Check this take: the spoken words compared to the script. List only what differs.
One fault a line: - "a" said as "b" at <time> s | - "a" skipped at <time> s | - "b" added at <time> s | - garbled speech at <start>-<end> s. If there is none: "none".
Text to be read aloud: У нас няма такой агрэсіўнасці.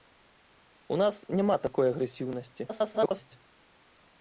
- garbled speech at 2.7-3.4 s